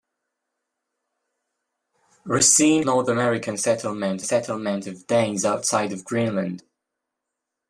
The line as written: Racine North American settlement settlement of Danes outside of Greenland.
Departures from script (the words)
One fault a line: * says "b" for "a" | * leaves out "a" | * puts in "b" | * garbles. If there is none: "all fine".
all fine